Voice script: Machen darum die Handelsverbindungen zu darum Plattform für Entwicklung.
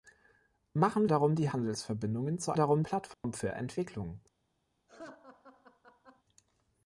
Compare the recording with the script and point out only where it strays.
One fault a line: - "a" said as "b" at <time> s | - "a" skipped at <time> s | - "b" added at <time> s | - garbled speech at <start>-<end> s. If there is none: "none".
none